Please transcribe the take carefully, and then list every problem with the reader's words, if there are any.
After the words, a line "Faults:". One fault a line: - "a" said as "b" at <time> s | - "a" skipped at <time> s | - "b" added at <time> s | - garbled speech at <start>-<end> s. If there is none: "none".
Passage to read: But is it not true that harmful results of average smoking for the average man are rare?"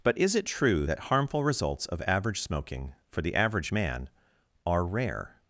But is it true that harmful results of average smoking for the average man are rare?"
Faults:
- "not" skipped at 0.5 s